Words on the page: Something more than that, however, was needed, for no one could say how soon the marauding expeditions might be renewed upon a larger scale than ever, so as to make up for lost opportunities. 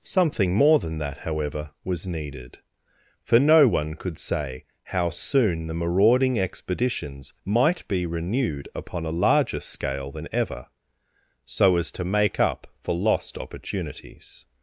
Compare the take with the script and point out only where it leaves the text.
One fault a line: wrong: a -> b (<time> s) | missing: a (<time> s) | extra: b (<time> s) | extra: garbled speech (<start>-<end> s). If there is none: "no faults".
no faults